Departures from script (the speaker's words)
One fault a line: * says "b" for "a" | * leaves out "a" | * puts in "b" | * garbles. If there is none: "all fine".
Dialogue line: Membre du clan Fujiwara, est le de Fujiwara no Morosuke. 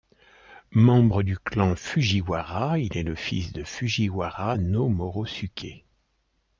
* puts in "il"
* puts in "fils"